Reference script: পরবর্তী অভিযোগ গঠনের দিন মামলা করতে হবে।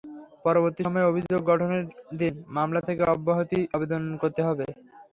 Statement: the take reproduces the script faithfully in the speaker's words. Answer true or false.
false